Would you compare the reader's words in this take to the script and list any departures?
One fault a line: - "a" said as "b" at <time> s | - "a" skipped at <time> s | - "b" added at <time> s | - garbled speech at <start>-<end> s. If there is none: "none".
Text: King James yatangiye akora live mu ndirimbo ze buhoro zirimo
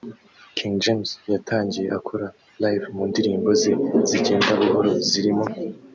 - "zigenda" added at 4.1 s